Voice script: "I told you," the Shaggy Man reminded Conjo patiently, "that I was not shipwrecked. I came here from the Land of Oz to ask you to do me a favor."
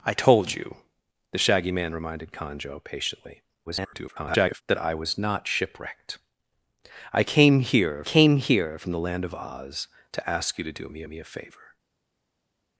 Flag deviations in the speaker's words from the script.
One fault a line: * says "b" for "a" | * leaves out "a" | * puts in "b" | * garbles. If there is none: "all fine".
* garbles
* puts in "came here"
* puts in "me"